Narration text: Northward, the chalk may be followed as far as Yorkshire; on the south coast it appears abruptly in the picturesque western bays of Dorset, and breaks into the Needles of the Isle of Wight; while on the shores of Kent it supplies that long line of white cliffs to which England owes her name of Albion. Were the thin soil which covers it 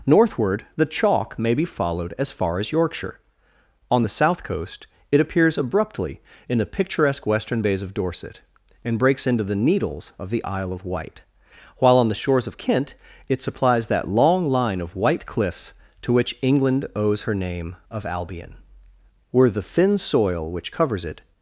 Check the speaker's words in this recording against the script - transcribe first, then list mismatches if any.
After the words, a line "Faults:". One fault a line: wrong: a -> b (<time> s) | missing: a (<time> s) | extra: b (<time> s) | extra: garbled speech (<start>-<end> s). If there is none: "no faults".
Northward, the chalk may be followed as far as Yorkshire; on the south coast it appears abruptly in the picturesque western bays of Dorset, and breaks into the Needles of the Isle of Wight; while on the shores of Kent it supplies that long line of white cliffs to which England owes her name of Albion. Were the thin soil which covers it
Faults:
no faults